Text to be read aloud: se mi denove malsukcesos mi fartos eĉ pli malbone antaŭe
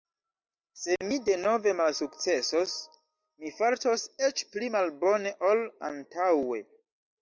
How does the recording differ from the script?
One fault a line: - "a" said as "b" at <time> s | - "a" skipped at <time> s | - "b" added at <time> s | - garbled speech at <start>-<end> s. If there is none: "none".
- "ol" added at 5.5 s